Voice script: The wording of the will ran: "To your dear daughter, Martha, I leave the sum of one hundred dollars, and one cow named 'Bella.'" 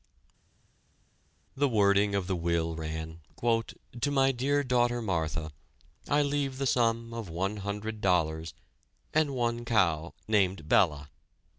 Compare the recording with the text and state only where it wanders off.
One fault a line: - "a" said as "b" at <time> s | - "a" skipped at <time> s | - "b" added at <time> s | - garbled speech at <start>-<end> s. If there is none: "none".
- "your" said as "my" at 4.1 s